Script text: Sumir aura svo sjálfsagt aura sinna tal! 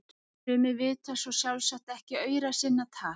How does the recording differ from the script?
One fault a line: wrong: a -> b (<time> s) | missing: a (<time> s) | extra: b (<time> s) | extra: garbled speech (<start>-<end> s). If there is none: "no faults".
wrong: aura -> vita (0.8 s)
extra: ekki (2.0 s)